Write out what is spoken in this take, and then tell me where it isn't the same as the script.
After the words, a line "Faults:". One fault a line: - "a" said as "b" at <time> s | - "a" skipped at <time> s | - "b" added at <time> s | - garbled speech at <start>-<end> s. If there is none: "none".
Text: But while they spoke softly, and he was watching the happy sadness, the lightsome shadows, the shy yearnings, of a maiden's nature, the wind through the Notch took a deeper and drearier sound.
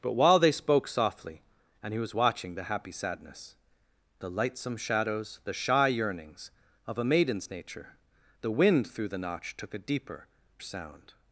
But while they spoke softly, and he was watching the happy sadness, the lightsome shadows, the shy yearnings, of a maiden's nature, the wind through the Notch took a deeper sound.
Faults:
- "and drearier" skipped at 10.3 s